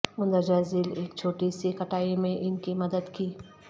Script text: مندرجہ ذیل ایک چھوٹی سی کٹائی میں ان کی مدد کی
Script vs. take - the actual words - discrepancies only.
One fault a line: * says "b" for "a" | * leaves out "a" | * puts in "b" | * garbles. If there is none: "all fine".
all fine